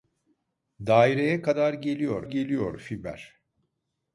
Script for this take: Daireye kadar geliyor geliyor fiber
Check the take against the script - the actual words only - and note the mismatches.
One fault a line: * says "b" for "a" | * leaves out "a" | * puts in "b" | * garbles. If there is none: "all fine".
all fine